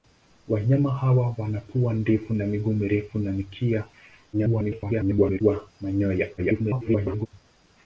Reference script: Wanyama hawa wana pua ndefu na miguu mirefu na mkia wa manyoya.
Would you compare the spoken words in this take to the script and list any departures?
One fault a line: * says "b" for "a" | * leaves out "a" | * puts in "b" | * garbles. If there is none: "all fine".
* garbles
* garbles